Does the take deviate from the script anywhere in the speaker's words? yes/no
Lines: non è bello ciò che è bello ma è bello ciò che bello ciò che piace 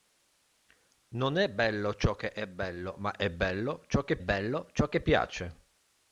no